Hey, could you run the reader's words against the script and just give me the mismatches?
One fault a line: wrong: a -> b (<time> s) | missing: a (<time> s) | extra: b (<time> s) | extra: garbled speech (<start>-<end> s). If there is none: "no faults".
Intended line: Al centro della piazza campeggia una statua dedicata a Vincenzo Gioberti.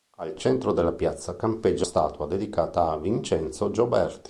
missing: una (1.9 s)